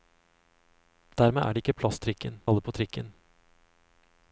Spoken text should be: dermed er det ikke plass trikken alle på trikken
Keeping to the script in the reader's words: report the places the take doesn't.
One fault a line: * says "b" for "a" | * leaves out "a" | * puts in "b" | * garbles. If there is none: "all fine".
all fine